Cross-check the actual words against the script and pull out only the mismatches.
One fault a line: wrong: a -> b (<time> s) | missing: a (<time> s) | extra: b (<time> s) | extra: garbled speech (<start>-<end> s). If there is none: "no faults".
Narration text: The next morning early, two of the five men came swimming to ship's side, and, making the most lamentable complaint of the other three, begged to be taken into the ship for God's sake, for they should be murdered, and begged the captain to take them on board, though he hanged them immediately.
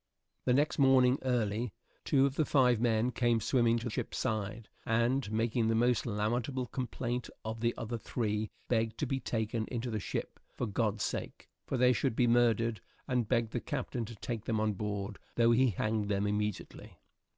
no faults